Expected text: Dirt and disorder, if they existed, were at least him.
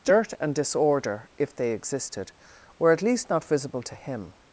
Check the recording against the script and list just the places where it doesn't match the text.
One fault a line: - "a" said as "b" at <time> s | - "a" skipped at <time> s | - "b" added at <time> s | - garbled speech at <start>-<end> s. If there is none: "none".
- "not visible to" added at 3.3 s